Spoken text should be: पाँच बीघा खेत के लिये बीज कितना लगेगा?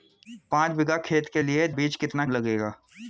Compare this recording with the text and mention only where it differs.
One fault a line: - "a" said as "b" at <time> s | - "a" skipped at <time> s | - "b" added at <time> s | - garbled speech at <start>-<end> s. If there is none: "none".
none